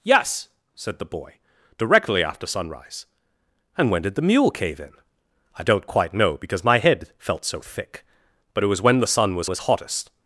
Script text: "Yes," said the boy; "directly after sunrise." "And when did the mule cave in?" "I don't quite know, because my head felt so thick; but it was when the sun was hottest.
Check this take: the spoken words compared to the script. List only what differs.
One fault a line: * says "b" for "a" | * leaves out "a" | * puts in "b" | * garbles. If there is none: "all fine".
* puts in "was"